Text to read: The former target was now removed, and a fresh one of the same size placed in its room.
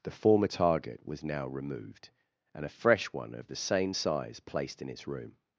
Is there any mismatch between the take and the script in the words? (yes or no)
no